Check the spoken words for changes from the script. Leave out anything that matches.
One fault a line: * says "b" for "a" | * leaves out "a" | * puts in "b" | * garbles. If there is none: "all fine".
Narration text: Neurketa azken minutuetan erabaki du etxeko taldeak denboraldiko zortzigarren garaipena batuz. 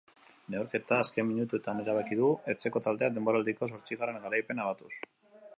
all fine